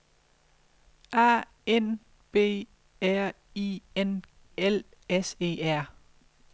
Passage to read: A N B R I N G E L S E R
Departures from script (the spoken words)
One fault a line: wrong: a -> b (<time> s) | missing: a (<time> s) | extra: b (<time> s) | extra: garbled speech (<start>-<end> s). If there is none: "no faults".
missing: G E (4.2 s)